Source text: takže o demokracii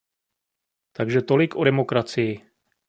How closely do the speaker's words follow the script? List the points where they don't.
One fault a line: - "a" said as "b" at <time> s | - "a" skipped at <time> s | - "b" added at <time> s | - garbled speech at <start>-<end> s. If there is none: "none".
- "tolik" added at 1.2 s